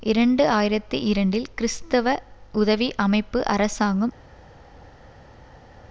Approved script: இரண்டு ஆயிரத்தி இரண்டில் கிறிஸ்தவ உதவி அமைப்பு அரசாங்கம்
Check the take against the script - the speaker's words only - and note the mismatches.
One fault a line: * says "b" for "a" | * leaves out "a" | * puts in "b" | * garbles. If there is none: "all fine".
all fine